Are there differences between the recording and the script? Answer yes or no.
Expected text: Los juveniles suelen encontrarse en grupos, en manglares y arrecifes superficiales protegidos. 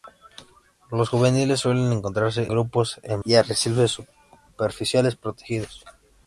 yes